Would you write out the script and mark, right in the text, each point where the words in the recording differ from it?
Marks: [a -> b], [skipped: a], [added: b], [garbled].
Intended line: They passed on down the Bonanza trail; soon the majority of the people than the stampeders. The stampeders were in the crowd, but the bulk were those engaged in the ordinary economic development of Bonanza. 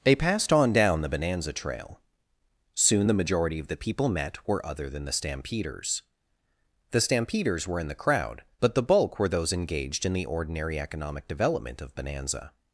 They passed on down the Bonanza trail; soon the majority of the people [added: met were other] than the stampeders. The stampeders were in the crowd, but the bulk were those engaged in the ordinary economic development of Bonanza.